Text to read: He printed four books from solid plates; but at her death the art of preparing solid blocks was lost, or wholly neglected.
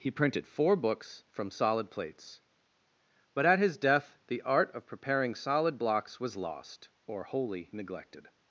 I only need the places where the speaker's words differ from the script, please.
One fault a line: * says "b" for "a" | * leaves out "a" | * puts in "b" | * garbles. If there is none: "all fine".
* says "his" for "her"